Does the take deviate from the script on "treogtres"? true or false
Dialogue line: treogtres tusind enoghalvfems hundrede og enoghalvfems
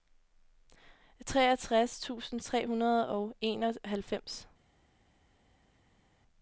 false